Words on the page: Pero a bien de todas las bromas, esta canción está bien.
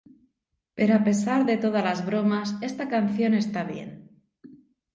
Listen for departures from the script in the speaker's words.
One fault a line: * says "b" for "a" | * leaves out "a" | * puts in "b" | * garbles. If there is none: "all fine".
* says "pesar" for "bien"